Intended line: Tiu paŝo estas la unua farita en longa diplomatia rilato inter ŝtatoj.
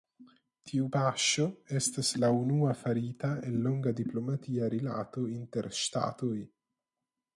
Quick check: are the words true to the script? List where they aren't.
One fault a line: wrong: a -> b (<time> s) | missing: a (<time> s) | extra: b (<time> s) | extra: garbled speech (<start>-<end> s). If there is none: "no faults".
no faults